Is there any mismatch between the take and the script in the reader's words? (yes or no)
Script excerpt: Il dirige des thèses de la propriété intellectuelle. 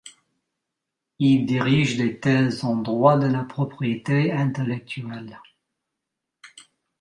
yes